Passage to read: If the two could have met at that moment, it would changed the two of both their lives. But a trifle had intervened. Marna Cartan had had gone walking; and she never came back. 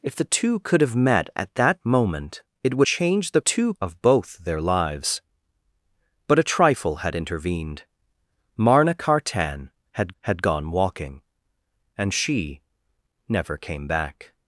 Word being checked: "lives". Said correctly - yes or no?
yes